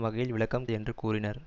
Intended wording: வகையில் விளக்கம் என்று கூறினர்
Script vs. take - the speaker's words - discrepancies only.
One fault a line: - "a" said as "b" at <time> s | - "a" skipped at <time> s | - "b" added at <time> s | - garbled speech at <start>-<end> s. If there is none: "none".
none